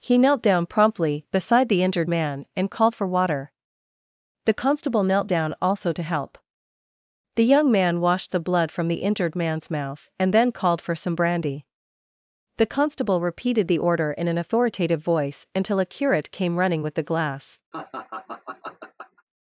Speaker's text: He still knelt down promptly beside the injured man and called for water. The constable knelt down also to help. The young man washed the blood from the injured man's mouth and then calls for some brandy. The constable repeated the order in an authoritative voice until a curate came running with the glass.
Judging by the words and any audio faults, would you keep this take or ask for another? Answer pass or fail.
fail